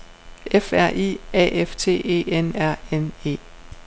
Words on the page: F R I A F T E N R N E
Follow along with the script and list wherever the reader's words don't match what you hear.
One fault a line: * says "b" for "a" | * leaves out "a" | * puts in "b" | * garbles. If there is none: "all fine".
all fine